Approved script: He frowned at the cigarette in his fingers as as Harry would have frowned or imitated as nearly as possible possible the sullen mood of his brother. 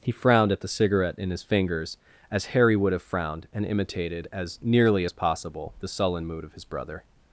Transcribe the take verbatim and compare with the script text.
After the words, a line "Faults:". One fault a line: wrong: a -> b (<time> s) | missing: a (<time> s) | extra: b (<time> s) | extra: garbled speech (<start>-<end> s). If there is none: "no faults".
He frowned at the cigarette in his fingers as Harry would have frowned and imitated as nearly as possible the sullen mood of his brother.
Faults:
missing: as (2.5 s)
wrong: or -> and (3.5 s)
missing: possible (5.7 s)